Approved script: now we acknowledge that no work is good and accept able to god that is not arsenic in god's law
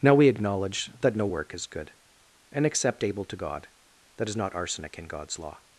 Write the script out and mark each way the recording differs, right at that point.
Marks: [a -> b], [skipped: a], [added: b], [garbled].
now we acknowledge that no work is good and accept able to god that is not arsenic in god's law